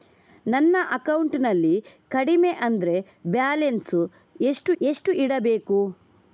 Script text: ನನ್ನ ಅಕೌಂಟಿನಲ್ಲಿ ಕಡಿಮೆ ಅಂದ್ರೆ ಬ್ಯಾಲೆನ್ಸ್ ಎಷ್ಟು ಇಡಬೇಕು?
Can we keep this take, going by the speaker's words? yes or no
no